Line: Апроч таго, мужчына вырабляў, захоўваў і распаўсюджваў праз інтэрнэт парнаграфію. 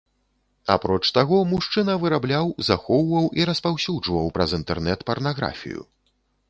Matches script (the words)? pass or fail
pass